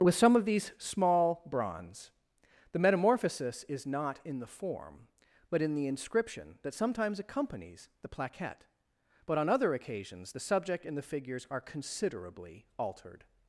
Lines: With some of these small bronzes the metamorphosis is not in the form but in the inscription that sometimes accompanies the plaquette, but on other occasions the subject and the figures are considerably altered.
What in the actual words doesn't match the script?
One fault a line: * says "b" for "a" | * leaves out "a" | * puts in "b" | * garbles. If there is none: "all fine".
* says "bronze" for "bronzes"